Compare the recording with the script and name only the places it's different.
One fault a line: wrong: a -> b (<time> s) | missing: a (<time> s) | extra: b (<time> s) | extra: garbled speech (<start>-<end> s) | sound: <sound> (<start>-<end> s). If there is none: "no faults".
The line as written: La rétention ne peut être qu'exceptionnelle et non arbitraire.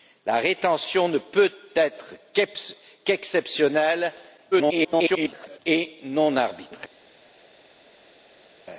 extra: garbled speech (4.5-5.6 s)